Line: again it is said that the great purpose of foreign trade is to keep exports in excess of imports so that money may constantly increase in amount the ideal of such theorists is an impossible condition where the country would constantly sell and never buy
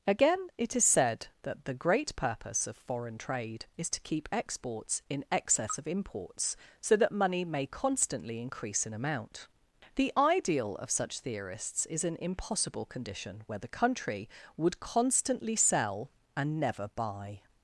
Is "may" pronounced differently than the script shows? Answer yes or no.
no